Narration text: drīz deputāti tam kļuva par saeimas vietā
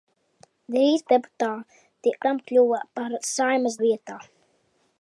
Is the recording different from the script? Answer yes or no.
no